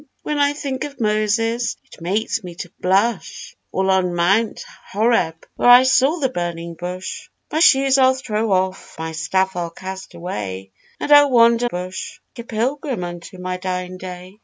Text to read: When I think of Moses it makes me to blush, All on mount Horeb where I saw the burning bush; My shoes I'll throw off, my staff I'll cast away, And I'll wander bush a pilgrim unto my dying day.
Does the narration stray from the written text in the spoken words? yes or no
no